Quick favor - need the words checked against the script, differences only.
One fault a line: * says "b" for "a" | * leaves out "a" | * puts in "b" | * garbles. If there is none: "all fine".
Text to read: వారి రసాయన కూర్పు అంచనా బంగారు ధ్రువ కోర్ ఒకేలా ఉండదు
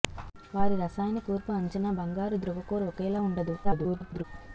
* garbles